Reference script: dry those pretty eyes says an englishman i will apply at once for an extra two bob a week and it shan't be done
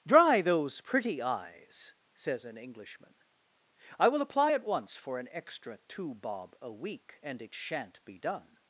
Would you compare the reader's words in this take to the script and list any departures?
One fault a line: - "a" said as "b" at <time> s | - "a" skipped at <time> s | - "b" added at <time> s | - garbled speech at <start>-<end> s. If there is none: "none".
none